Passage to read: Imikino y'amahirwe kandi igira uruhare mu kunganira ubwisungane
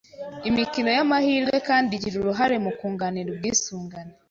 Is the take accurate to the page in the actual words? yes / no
yes